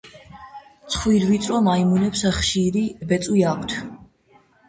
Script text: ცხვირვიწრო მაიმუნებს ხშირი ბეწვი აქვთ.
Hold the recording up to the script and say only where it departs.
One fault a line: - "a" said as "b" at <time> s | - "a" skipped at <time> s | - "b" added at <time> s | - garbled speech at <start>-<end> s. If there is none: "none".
none